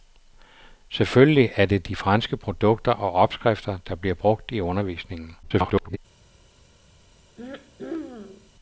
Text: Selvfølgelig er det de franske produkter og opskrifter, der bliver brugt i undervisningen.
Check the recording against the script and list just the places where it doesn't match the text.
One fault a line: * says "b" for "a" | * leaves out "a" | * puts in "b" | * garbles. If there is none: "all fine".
* garbles